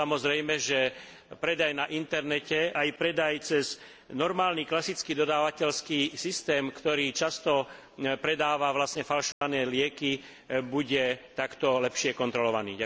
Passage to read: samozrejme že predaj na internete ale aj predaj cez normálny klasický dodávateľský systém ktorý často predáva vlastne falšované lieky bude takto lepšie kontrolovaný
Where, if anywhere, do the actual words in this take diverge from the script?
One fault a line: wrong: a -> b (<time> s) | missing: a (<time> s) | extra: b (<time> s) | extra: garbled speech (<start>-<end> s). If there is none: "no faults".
missing: ale (2.7 s)